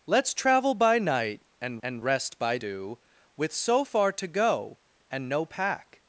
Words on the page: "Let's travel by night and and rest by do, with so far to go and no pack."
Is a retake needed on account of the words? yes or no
no